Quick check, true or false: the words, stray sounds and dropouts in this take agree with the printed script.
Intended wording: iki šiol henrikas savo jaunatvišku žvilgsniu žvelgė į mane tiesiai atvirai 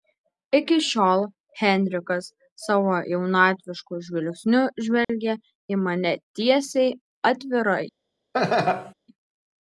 false